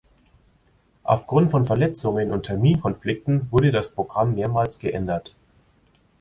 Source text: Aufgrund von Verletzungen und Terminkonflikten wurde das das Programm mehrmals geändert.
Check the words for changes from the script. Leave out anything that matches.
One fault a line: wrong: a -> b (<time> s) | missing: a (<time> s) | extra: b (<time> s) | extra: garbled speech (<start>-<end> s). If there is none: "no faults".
missing: das (3.9 s)